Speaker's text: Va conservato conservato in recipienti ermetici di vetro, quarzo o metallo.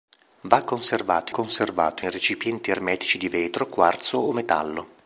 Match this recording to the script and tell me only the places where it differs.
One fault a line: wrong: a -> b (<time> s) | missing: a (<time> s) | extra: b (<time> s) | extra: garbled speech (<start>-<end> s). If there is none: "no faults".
no faults